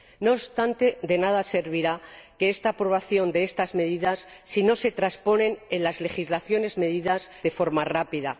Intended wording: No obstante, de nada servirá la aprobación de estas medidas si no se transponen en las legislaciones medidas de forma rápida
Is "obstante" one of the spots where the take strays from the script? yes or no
no